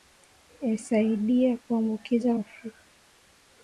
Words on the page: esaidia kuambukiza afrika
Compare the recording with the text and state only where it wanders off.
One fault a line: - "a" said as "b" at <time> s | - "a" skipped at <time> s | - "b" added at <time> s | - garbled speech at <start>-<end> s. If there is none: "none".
none